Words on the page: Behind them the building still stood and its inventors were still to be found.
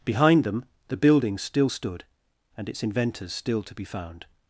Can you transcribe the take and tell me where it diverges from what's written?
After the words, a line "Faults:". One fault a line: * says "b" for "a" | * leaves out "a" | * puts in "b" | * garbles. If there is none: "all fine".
Behind them the building still stood and its inventors still to be found.
Faults:
* leaves out "were"